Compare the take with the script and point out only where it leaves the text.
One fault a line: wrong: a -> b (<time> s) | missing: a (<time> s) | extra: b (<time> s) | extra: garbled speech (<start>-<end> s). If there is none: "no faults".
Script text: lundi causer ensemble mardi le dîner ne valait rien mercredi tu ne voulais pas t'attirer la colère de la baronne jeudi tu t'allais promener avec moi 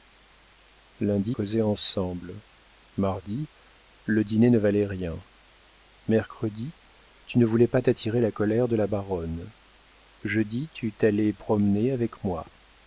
no faults